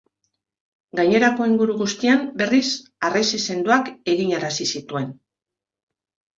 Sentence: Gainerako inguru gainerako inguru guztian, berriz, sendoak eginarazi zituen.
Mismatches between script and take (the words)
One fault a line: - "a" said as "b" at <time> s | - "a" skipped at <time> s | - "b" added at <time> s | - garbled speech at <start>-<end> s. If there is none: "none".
- "gainerako inguru" skipped at 1.8 s
- "harresi" added at 3.1 s